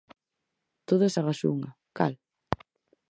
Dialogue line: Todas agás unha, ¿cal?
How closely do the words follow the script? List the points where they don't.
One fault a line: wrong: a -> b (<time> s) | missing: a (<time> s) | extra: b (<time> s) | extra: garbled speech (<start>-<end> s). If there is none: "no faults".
no faults